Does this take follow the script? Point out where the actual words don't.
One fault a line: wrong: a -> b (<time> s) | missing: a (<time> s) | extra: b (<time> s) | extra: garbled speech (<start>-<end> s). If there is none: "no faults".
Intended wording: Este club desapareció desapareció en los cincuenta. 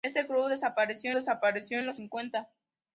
no faults